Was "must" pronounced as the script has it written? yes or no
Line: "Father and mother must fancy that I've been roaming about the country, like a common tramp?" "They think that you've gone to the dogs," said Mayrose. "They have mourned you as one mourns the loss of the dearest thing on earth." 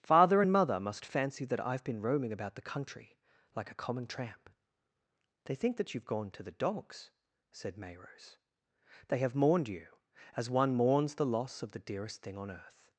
yes